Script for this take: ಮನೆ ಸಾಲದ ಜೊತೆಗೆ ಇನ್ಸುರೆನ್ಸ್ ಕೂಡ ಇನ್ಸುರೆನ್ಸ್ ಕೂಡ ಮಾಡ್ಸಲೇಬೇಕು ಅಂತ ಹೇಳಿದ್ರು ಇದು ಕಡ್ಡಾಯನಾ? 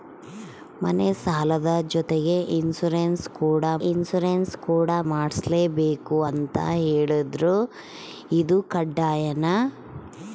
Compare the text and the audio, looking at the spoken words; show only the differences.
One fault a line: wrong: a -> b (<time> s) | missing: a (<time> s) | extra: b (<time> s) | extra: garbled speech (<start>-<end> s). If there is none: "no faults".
no faults